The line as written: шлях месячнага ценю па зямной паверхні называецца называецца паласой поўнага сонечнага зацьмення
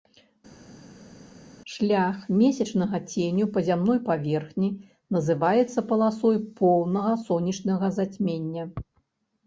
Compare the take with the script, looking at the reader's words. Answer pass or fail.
fail